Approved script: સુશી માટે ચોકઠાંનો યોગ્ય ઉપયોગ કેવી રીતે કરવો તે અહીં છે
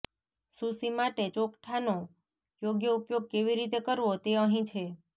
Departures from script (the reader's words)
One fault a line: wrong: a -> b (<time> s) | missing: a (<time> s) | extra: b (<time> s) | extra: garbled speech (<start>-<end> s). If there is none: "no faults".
no faults